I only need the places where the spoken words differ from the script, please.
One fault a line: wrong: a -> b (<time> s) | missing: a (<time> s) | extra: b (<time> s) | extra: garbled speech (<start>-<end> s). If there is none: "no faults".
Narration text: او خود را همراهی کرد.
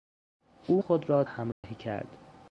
no faults